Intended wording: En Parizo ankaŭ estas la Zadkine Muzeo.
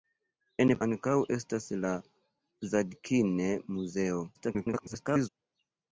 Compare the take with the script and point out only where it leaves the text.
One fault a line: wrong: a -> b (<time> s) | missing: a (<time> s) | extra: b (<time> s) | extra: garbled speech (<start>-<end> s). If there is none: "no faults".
missing: Parizo (0.7 s)
extra: garbled speech (4.3-5.3 s)